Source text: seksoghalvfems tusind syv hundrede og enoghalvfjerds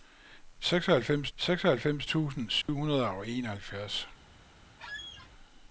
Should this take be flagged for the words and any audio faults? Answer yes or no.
yes